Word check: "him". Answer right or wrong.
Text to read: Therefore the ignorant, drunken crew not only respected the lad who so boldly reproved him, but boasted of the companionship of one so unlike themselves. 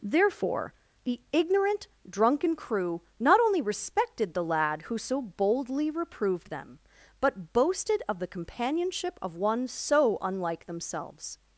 wrong